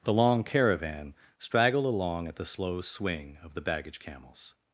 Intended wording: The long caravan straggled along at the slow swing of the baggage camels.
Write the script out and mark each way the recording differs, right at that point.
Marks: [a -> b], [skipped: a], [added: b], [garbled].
The long caravan straggled along at the slow swing of the baggage camels.